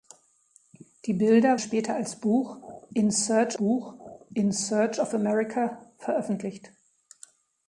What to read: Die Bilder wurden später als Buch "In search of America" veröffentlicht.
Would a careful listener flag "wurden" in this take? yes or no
yes